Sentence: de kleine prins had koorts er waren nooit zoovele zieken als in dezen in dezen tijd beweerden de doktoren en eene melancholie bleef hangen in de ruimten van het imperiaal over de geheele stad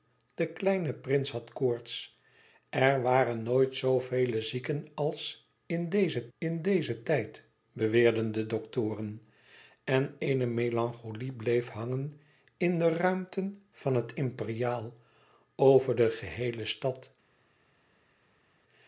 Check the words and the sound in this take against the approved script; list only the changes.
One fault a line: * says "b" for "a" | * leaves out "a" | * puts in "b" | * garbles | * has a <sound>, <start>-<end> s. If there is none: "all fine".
all fine